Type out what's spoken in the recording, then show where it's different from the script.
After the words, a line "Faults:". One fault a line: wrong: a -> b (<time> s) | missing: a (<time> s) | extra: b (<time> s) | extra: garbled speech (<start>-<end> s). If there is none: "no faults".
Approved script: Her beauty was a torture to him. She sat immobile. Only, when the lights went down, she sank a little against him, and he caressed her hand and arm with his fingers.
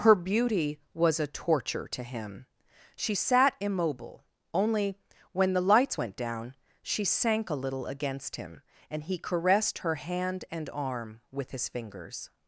Her beauty was a torture to him. She sat immobile. Only, when the lights went down, she sank a little against him, and he caressed her hand and arm with his fingers.
Faults:
no faults